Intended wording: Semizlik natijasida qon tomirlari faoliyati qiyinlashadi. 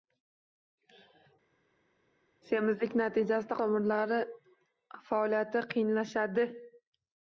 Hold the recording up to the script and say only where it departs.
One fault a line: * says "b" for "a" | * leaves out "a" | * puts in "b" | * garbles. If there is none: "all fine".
* leaves out "qon"